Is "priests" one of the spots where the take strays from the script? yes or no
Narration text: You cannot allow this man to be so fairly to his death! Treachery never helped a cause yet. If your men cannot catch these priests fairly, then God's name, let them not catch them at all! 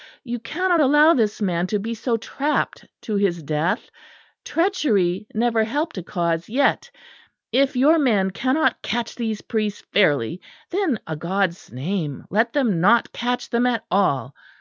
no